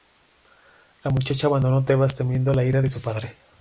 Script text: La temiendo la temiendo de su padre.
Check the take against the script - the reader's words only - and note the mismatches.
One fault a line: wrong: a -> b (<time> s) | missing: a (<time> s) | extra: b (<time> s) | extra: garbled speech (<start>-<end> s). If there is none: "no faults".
extra: muchacha abandonó Tebas (1.1 s)
wrong: temiendo -> ira (2.6 s)